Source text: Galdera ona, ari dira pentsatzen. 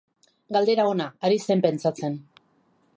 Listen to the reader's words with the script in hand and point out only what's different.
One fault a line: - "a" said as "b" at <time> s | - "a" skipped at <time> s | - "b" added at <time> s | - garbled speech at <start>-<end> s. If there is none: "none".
- "dira" said as "zen" at 1.5 s